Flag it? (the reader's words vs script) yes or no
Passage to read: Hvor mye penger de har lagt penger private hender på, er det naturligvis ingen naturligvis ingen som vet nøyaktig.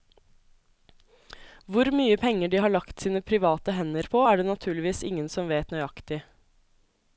yes